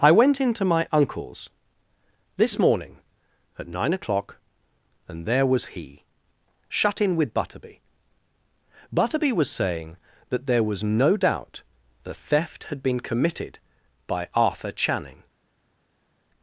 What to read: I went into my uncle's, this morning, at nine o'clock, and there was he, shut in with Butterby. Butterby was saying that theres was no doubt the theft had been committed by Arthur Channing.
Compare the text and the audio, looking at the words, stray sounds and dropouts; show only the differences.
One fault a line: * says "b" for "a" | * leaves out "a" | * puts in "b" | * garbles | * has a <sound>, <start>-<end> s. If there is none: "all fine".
* says "there" for "theres"